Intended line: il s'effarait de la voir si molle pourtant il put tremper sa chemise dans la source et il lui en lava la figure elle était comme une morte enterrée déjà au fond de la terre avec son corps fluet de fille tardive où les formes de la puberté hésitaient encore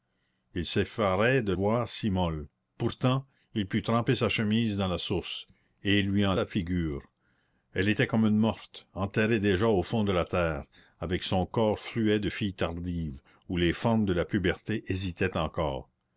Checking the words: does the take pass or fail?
fail